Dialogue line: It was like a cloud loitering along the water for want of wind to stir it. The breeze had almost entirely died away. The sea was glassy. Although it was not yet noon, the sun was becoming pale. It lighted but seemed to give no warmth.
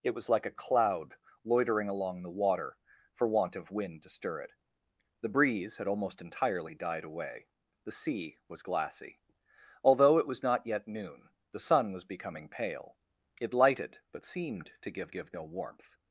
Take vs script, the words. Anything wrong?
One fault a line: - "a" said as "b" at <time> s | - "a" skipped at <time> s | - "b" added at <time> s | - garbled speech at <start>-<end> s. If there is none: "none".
- "give" added at 15.1 s